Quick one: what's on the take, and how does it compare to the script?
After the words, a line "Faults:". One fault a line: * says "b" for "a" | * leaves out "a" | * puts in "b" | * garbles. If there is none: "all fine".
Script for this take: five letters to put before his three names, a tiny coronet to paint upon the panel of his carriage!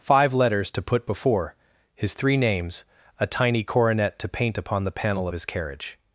five letters to put before his three names, a tiny coronet to paint upon the panel of his carriage!
Faults:
all fine